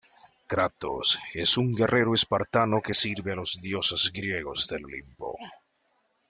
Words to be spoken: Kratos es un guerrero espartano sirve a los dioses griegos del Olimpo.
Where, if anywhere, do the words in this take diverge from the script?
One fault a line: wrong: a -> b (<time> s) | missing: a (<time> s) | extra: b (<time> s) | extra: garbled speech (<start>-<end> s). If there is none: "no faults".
extra: que (2.8 s)